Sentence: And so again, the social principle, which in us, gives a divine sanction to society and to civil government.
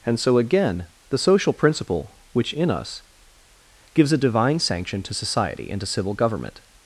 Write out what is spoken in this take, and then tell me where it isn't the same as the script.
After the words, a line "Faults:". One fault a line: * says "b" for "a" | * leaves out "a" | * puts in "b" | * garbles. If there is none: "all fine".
And so again, the social principle, which in us, gives a divine sanction to society and to civil government.
Faults:
all fine